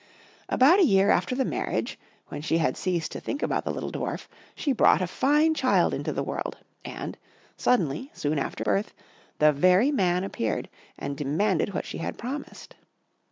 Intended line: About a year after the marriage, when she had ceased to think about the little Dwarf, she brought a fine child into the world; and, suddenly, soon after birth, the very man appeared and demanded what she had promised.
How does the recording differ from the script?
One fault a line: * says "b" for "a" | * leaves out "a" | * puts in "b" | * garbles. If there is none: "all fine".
all fine